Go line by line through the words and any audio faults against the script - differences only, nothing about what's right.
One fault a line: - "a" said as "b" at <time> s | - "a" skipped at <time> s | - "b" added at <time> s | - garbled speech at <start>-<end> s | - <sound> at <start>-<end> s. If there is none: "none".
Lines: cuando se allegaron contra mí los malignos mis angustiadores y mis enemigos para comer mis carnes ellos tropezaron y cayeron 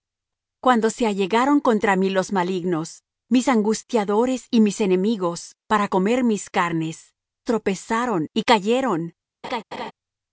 - "ellos" skipped at 7.1 s
- laugh at 9.4-9.9 s